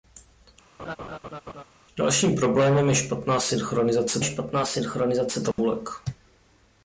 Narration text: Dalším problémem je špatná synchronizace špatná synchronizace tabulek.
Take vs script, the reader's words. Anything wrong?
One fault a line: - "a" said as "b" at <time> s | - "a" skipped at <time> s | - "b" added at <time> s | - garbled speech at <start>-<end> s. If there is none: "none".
none